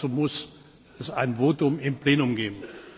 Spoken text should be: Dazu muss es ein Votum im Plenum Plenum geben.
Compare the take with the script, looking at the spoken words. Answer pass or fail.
fail